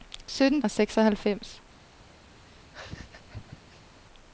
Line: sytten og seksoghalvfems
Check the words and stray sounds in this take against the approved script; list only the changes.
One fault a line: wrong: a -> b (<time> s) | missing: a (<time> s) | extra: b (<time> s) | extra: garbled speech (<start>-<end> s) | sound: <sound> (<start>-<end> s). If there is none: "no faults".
sound: laugh (2.4-4.0 s)